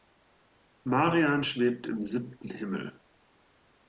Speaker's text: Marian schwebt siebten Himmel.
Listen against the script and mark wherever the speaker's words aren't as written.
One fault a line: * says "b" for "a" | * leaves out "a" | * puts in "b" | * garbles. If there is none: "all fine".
* puts in "im"